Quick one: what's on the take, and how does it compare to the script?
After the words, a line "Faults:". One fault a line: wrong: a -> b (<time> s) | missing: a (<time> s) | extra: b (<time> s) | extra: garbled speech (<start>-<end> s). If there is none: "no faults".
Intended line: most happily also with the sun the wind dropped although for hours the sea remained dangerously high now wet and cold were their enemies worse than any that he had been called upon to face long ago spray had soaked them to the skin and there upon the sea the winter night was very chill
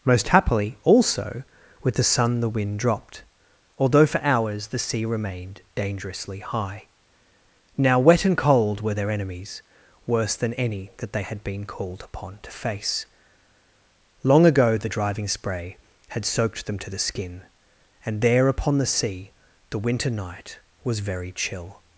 most happily also with the sun the wind dropped although for hours the sea remained dangerously high now wet and cold were their enemies worse than any that they had been called upon to face long ago the driving spray had soaked them to the skin and there upon the sea the winter night was very chill
Faults:
wrong: he -> they (11.1 s)
extra: the driving (14.8 s)